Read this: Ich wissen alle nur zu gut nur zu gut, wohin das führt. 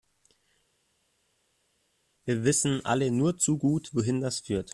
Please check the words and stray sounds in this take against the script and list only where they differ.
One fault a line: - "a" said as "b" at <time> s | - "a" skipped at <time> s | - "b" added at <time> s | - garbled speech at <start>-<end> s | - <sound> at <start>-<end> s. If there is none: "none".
- "Ich" said as "Wir" at 2.2 s
- "nur zu gut" skipped at 3.9 s